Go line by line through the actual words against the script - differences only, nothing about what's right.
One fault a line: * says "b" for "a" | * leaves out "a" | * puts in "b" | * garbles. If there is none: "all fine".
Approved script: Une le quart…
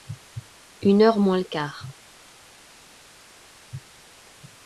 * puts in "heure moins"